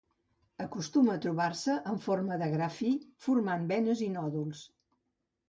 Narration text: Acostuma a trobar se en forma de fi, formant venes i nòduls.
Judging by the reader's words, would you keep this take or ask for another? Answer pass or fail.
fail